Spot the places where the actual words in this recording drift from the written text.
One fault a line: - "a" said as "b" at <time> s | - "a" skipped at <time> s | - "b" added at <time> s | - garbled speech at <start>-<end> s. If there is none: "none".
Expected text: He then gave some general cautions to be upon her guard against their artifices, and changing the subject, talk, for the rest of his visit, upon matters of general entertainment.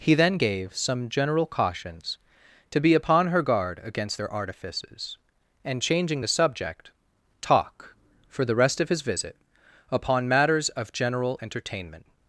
none